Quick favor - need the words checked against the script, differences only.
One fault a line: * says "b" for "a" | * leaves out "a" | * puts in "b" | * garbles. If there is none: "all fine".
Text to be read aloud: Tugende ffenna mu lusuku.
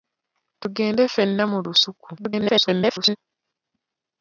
* garbles